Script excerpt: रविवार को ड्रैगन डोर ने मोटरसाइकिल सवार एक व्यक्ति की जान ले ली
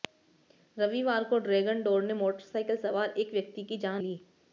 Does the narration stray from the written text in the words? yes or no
yes